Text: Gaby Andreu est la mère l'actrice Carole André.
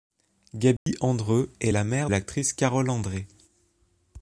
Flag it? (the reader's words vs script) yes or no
no